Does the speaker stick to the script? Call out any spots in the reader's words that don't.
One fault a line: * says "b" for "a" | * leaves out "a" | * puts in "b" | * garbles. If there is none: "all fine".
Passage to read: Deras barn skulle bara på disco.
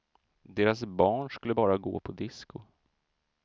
* puts in "gå"